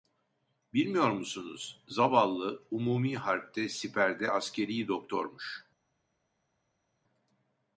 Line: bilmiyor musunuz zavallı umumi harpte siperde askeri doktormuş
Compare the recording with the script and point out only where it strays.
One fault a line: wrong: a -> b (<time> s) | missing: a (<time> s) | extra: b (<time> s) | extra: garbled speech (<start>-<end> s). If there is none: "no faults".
no faults